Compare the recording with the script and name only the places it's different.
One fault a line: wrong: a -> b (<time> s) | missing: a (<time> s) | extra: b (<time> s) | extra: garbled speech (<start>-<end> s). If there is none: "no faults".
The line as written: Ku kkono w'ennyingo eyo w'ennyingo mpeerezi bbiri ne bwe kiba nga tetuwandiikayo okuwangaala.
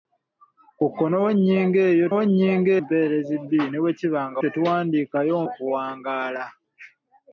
no faults